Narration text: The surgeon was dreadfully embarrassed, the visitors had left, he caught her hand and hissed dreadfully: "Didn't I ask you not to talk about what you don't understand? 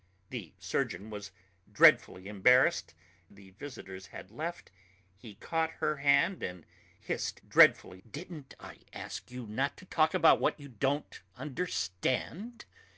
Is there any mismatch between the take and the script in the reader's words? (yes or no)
no